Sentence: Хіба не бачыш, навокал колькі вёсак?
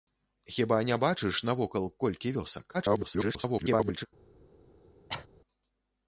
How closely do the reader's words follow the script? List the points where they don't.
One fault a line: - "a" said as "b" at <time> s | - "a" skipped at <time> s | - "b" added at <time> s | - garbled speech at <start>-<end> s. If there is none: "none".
- garbled speech at 2.7-4.1 s